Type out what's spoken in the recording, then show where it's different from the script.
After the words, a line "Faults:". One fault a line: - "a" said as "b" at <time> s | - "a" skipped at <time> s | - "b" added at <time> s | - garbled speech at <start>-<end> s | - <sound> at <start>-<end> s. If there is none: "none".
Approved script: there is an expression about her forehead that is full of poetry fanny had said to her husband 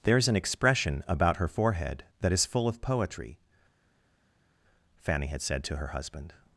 there is an expression about her forehead that is full of poetry fanny had said to her husband
Faults:
none